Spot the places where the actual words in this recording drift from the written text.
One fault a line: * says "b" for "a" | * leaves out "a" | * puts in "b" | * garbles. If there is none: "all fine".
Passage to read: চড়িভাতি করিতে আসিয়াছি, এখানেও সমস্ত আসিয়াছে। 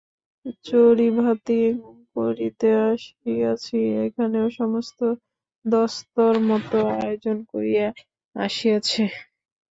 * puts in "দস্তুরমত আয়োজন করিয়া"